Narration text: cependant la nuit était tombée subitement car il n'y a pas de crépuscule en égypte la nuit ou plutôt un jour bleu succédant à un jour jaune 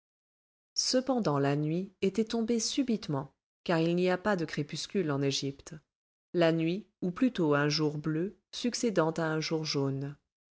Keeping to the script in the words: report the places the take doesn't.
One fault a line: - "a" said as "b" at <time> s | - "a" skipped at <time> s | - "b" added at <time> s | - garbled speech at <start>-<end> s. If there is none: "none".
none